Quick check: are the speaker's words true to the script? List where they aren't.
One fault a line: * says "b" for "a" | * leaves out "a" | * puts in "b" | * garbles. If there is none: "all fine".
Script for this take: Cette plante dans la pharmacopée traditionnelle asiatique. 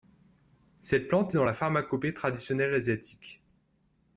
all fine